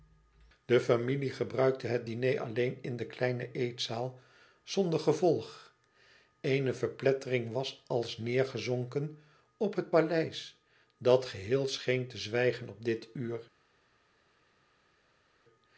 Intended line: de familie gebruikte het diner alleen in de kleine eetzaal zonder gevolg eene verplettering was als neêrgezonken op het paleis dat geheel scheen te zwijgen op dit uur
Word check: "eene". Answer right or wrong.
right